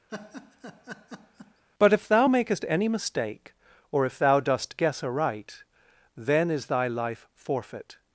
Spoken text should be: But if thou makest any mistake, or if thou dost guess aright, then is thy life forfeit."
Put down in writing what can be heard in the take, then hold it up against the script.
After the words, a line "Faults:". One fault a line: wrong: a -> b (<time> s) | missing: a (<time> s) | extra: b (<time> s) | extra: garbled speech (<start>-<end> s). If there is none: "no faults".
But if thou makest any mistake, or if thou dost guess aright, then is thy life forfeit."
Faults:
no faults